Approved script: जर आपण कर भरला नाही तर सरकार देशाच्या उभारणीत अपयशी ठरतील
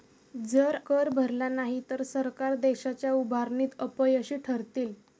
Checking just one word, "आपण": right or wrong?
wrong